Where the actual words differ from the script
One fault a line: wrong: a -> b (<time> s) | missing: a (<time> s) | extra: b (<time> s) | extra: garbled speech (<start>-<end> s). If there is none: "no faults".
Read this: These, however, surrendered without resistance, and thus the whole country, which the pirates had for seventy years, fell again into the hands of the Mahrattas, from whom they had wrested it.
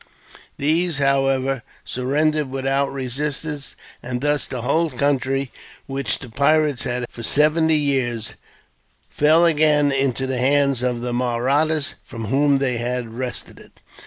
no faults